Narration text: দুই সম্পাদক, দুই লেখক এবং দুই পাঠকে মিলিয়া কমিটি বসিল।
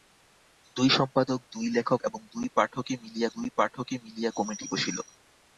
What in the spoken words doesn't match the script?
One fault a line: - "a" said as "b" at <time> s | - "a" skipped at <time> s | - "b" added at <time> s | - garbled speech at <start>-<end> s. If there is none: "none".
- "দুই পাঠকে মিলিয়া" added at 3.3 s